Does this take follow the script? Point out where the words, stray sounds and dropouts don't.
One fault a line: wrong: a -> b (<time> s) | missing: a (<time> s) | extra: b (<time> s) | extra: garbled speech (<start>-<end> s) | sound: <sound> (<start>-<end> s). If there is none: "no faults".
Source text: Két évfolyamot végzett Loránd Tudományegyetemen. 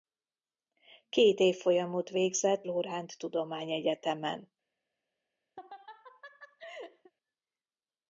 sound: laugh (5.6-7.1 s)